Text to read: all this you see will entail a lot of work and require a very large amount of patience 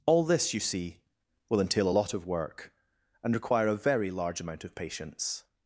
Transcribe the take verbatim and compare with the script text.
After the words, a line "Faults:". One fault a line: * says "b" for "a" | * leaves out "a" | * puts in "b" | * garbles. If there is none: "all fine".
all this you see will entail a lot of work and require a very large amount of patience
Faults:
all fine